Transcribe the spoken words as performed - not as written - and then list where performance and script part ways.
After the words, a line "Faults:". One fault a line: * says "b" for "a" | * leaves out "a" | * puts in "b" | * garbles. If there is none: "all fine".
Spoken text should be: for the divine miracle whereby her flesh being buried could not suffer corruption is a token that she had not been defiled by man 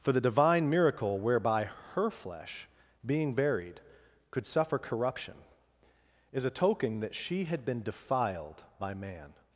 for the divine miracle whereby her flesh being buried could suffer corruption is a token that she had been defiled by man
Faults:
* leaves out "not"
* leaves out "not"